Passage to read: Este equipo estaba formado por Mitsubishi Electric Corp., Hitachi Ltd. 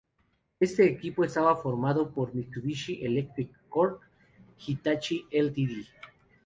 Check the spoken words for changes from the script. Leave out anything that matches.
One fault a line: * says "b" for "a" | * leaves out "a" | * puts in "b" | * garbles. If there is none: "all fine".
all fine